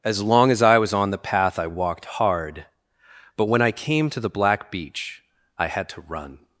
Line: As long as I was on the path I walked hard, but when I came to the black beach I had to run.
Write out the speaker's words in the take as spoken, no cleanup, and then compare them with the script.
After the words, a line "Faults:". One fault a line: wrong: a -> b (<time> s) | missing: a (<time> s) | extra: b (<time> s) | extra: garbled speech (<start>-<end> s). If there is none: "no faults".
As long as I was on the path I walked hard, but when I came to the black beach I had to run.
Faults:
no faults